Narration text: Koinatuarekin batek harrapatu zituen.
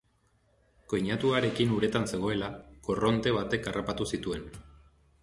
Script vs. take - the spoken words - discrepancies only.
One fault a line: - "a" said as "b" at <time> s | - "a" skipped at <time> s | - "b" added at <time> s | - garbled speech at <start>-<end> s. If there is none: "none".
- "uretan zegoela korronte" added at 1.8 s